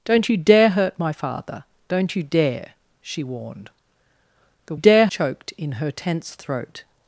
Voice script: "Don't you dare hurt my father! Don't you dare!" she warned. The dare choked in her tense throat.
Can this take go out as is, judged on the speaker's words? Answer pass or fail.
pass